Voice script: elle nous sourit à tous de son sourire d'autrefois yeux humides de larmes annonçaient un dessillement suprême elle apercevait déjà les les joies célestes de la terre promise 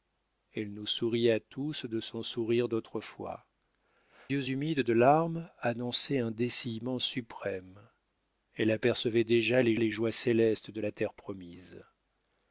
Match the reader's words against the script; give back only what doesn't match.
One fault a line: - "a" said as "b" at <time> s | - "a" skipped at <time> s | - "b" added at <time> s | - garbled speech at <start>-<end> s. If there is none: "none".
none